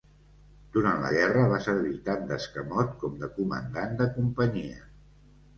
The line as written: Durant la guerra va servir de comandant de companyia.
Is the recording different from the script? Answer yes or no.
yes